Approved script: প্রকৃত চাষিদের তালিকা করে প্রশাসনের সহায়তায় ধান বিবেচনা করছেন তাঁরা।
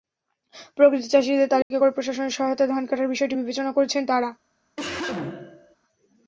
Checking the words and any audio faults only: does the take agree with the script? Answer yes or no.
no